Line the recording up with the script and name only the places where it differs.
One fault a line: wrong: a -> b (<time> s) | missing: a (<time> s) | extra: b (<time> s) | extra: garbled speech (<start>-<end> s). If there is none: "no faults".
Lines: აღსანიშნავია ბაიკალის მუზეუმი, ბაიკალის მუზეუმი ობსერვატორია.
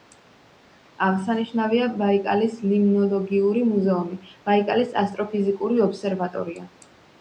extra: ლიმნოლოგიური (2.7 s)
wrong: მუზეუმი -> ასტროფიზიკური (5.1 s)